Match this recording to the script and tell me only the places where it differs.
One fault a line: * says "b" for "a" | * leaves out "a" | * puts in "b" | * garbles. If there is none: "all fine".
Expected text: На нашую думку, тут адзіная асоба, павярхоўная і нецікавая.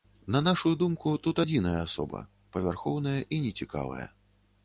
all fine